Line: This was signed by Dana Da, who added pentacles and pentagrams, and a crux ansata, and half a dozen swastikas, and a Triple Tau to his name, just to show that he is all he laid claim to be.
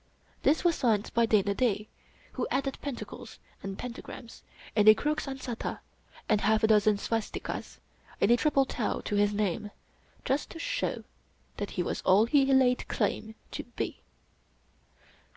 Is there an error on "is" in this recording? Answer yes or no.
yes